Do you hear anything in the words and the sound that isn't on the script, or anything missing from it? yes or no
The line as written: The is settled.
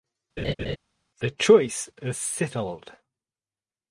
yes